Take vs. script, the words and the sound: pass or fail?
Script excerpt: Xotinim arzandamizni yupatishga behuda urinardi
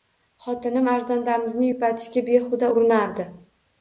pass